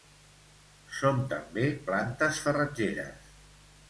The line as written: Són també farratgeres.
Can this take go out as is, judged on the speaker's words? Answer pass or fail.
fail